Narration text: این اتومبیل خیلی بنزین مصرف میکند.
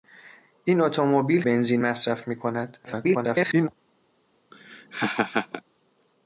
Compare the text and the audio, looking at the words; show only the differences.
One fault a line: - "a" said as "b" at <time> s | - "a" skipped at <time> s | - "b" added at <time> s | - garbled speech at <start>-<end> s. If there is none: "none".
- "خیلی" skipped at 1.4 s
- garbled speech at 2.8-3.7 s